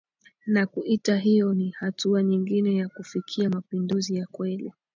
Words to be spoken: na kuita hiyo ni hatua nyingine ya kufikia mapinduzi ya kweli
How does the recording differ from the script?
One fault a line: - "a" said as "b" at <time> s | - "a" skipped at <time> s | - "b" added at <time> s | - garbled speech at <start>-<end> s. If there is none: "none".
none